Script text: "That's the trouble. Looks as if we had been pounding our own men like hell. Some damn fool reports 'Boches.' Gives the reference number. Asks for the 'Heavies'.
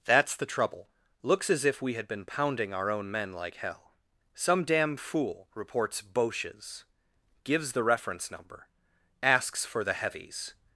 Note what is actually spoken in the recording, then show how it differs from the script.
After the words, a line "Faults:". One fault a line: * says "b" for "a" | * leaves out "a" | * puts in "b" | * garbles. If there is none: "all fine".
"That's the trouble. Looks as if we had been pounding our own men like hell. Some damn fool reports 'Boches.' Gives the reference number. Asks for the 'Heavies'.
Faults:
all fine